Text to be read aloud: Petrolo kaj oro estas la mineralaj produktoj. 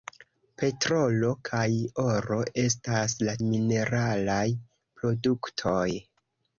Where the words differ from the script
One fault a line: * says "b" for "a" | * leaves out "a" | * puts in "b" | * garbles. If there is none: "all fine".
all fine